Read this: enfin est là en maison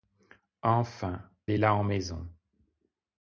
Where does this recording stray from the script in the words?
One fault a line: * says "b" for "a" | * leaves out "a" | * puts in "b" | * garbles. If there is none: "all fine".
all fine